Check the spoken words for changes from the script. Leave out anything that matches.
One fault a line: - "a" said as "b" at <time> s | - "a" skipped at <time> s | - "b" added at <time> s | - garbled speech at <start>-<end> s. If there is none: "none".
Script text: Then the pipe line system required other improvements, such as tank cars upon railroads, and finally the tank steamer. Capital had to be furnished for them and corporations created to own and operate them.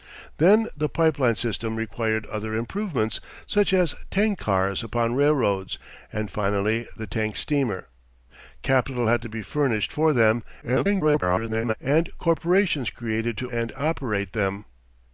- garbled speech at 10.6-11.7 s
- "own" skipped at 13.5 s